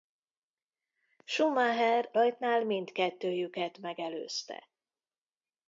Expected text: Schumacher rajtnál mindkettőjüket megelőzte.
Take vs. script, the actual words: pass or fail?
pass